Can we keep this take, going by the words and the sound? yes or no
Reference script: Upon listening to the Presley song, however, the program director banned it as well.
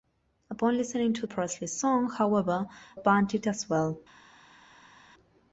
no